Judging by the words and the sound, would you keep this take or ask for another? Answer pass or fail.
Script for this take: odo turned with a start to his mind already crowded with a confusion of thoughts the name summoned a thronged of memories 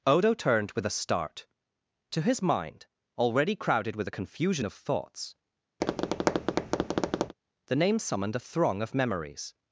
fail